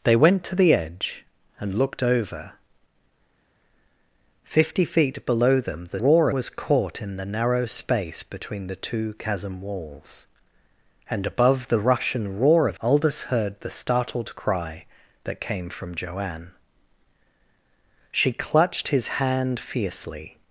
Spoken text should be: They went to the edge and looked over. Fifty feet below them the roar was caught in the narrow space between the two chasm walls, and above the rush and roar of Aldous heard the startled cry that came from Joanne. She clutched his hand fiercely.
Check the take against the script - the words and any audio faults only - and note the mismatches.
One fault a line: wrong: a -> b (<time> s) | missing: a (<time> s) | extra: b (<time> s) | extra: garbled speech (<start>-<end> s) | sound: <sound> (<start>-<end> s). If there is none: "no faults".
no faults